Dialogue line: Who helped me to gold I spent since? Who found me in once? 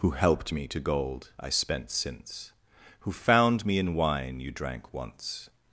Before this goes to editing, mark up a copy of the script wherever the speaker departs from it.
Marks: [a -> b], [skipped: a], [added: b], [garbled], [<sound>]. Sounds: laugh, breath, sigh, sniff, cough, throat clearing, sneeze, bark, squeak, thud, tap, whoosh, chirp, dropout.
Who helped me to gold I spent since? Who found me in [added: wine you drank] once?